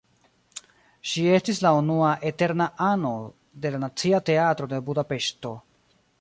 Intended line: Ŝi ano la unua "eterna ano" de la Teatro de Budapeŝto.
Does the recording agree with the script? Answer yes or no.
no